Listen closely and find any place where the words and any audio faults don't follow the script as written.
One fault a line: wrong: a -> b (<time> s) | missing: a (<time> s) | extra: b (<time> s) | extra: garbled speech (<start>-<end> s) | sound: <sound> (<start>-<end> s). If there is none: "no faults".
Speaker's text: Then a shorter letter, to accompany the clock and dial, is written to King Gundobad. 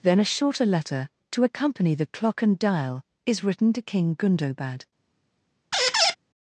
sound: squeak (5.7-6.2 s)